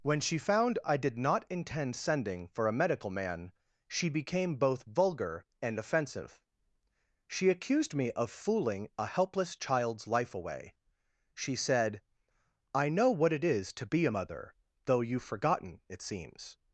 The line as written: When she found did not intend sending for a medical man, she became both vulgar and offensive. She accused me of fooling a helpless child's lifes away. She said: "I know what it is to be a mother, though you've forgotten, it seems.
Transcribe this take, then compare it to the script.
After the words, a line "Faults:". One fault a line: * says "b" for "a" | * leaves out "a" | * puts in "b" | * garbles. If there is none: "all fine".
When she found I did not intend sending for a medical man, she became both vulgar and offensive. She accused me of fooling a helpless child's life away. She said: "I know what it is to be a mother, though you've forgotten, it seems.
Faults:
* puts in "I"
* says "life" for "lifes"